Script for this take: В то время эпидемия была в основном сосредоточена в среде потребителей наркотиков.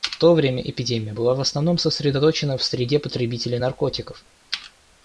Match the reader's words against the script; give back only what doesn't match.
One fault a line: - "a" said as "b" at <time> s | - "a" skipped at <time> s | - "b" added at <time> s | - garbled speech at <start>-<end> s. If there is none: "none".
none